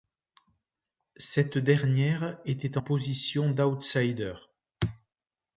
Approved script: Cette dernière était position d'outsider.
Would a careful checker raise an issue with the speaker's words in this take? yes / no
no